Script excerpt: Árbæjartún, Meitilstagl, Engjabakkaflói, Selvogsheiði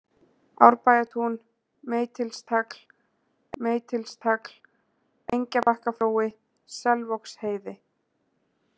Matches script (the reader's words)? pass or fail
fail